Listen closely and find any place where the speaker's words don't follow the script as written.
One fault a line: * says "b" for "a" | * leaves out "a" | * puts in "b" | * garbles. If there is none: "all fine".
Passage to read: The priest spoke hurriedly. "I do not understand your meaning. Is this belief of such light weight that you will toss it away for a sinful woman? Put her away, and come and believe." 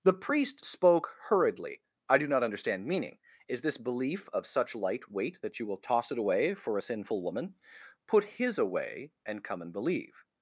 * leaves out "your"
* says "his" for "her"